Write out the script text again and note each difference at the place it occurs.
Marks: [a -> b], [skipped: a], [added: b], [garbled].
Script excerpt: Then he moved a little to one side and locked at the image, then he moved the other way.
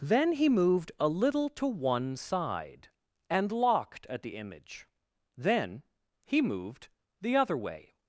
Then he moved a little to one side and locked at the image, then he moved the other way.